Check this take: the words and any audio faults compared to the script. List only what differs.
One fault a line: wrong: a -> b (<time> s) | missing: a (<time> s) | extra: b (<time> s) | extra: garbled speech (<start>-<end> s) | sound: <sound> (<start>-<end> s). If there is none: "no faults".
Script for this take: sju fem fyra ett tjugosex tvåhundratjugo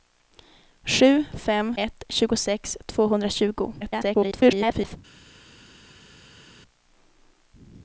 missing: fyra (1.8 s)
extra: garbled speech (3.8-5.0 s)